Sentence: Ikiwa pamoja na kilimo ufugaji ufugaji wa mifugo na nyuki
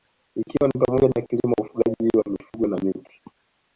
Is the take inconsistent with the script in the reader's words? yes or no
yes